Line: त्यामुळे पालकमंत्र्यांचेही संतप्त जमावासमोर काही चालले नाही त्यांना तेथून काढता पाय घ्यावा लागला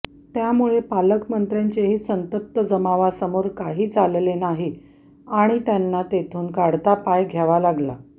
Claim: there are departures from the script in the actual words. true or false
true